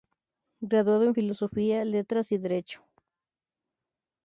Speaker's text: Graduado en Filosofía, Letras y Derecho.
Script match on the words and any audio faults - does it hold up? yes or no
yes